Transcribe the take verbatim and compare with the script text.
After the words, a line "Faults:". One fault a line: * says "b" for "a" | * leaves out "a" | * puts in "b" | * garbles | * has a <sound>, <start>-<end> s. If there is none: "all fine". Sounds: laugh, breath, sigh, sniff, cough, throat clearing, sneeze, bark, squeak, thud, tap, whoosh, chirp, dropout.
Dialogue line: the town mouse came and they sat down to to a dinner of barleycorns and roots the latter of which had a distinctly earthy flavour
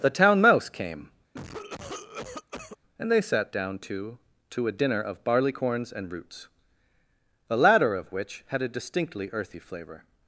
the town mouse came and they sat down to to a dinner of barleycorns and roots the latter of which had a distinctly earthy flavour
Faults:
* has a cough, 1.3-2.8 s